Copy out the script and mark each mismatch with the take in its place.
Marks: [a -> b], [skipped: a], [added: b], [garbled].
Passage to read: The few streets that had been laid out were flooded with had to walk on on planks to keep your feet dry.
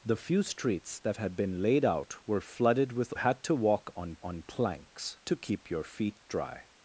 The few streets that had been laid out were flooded with had to walk on on planks to keep your feet dry.